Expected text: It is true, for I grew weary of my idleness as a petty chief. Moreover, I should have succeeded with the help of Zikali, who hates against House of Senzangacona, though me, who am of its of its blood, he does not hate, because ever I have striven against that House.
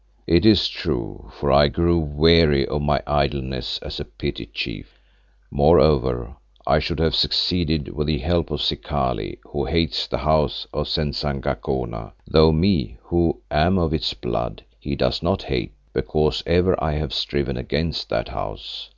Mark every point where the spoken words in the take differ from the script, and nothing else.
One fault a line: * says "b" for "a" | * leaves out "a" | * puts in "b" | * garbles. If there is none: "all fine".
* says "the" for "against"
* leaves out "of its"